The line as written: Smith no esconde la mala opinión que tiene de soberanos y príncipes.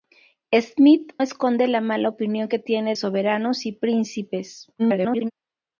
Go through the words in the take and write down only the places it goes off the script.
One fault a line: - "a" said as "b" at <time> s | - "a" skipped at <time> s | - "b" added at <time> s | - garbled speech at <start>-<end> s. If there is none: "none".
- "no" skipped at 1.1 s
- "de" skipped at 3.0 s
- garbled speech at 4.8-5.3 s